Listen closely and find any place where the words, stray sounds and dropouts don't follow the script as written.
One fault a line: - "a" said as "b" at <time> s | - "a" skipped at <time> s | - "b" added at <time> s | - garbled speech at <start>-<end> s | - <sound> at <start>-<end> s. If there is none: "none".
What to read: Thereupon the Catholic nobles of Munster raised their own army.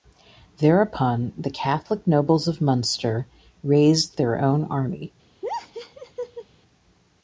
- laugh at 5.4-6.5 s